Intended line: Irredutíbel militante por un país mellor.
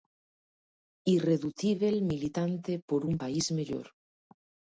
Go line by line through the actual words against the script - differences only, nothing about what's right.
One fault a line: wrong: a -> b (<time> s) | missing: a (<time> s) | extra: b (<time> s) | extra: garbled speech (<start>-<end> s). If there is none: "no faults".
no faults